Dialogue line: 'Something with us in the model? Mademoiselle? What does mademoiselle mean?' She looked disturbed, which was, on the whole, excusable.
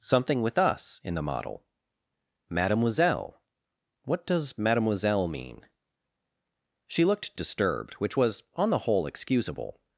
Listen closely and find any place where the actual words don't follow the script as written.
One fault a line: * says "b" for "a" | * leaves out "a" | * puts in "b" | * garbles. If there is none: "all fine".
all fine